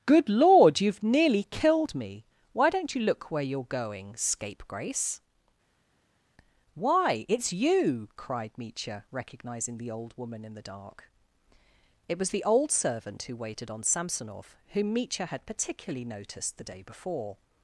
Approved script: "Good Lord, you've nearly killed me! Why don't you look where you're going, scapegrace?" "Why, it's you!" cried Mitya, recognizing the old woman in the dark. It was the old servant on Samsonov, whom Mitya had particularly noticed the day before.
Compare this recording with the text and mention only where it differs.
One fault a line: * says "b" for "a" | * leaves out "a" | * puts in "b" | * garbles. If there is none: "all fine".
* puts in "who waited"